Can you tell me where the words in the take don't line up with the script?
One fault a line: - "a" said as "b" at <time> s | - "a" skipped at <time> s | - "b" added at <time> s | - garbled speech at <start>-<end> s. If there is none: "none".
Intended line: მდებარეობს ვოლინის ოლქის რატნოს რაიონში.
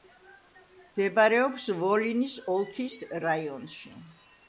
- "რატნოს" skipped at 3.0 s